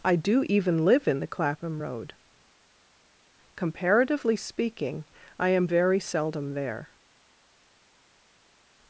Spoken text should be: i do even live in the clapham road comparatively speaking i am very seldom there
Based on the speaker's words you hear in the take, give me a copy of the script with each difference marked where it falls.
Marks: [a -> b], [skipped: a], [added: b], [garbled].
i do even live in the clapham road comparatively speaking i am very seldom there